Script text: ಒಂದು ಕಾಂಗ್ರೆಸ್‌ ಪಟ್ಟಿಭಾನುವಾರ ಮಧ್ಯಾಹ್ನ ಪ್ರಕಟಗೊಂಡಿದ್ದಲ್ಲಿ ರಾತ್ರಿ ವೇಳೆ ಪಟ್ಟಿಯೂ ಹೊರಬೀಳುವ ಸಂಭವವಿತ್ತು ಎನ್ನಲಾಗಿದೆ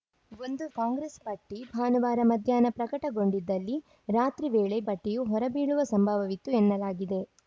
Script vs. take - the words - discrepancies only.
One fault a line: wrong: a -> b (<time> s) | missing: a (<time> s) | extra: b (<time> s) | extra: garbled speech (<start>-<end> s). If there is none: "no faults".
no faults